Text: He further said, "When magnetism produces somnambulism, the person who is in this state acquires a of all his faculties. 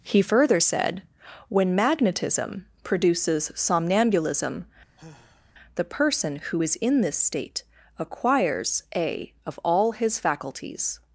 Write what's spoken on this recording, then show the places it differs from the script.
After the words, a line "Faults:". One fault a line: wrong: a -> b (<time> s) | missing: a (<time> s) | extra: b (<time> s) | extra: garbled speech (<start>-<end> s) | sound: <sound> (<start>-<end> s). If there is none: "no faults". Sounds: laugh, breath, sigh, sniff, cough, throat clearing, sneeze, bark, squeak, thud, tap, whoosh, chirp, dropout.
He further said, "When magnetism produces somnambulism, the person who is in this state acquires a of all his faculties.
Faults:
sound: sigh (5.0-5.5 s)